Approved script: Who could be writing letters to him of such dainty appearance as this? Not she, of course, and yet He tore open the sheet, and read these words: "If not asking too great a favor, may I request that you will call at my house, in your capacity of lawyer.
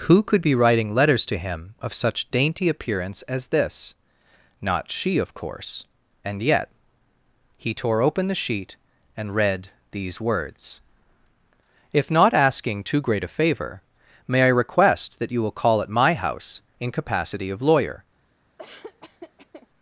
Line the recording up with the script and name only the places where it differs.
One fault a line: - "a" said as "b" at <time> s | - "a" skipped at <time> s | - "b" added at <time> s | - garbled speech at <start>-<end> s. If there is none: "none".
- "your" skipped at 16.9 s